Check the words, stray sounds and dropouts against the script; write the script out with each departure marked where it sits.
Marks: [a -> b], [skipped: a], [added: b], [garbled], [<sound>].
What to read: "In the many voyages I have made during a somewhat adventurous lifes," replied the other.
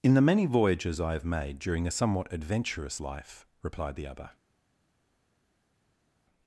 "In the many voyages I have made during a somewhat adventurous [lifes," -> life] replied the other.